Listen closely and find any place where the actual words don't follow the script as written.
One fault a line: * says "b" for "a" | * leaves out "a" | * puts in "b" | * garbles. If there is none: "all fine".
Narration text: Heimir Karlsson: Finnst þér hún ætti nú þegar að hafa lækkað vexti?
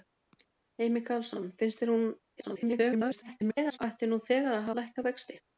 * garbles
* leaves out "hafa"